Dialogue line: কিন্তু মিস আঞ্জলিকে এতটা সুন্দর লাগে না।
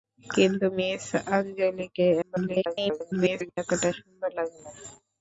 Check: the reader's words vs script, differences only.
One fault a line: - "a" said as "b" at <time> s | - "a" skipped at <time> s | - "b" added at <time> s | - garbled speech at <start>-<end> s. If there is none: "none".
- garbled speech at 2.2-3.6 s